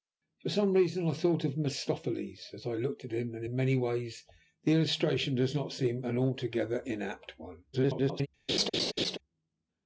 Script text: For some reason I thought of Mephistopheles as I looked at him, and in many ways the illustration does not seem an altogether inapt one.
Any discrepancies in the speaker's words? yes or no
yes